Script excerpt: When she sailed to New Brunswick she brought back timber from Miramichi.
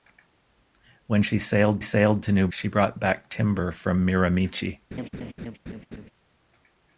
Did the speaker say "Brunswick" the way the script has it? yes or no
no